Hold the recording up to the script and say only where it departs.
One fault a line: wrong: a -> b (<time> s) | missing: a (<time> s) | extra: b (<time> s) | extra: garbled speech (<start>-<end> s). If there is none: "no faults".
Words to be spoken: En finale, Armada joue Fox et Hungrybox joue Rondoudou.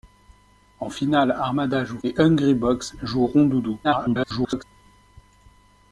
missing: Fox (2.0 s)
extra: garbled speech (3.8-4.6 s)